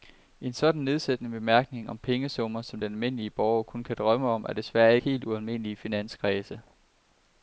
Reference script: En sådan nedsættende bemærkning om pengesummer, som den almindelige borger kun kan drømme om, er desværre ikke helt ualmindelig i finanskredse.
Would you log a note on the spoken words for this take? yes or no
yes